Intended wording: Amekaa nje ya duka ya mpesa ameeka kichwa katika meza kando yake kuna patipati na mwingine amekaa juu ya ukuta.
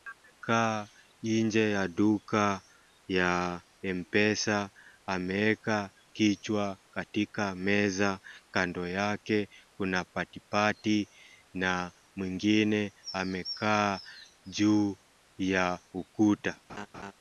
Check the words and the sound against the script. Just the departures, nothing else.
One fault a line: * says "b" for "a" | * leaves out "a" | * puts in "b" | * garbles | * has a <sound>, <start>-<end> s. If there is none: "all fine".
* has a laugh, 16.7-17.1 s